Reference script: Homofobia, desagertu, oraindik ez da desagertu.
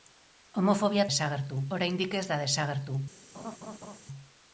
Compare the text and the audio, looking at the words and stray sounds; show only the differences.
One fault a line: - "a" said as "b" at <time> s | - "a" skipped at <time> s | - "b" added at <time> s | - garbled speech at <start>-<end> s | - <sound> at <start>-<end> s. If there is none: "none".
- laugh at 3.3-4.0 s